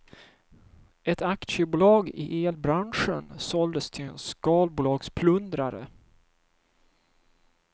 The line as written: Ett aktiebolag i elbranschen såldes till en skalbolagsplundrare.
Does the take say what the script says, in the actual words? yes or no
yes